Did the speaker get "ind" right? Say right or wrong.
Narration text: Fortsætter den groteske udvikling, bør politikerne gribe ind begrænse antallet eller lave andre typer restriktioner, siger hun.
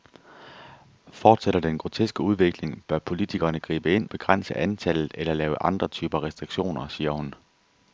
right